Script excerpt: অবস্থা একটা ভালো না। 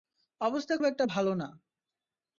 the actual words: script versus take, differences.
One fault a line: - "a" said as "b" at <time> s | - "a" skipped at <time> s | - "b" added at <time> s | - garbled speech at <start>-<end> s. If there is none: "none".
none